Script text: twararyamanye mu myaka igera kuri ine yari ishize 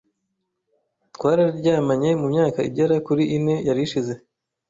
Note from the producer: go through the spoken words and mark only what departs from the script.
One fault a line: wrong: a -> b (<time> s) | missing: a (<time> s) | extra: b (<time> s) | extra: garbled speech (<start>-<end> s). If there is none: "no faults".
no faults